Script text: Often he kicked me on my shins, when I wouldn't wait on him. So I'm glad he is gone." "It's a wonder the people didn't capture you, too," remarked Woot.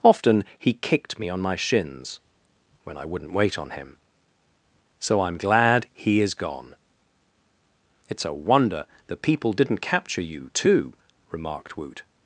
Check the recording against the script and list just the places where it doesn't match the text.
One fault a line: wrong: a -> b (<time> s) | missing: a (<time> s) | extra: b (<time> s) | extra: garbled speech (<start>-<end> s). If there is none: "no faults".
no faults